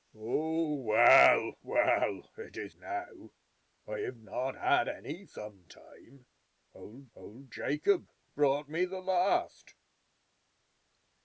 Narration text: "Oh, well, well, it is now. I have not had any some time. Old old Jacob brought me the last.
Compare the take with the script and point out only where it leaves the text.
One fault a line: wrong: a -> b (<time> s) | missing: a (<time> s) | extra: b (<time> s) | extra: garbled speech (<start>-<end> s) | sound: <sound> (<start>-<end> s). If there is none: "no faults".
no faults